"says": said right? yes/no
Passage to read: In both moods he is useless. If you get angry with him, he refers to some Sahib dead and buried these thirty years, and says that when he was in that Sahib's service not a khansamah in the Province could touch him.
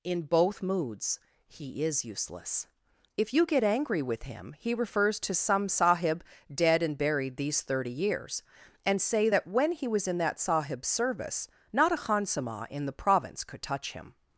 no